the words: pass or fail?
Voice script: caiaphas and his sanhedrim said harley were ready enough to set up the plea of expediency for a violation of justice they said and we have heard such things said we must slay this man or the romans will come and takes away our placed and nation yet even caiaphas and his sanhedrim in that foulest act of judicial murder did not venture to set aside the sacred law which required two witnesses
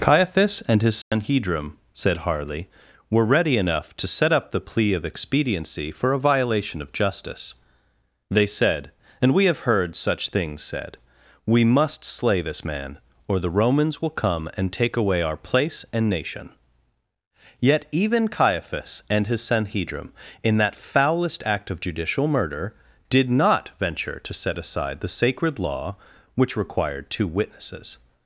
fail